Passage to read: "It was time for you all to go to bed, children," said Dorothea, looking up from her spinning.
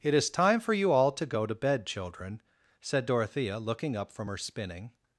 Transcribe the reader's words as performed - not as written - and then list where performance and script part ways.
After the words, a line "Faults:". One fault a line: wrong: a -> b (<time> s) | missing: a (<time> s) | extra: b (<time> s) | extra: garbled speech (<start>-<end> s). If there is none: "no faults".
"It is time for you all to go to bed, children," said Dorothea, looking up from her spinning.
Faults:
wrong: was -> is (0.1 s)